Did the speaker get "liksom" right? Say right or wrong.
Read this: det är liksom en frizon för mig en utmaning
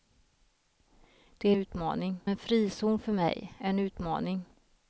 wrong